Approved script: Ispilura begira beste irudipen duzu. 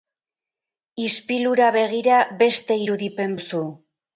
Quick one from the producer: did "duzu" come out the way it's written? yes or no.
yes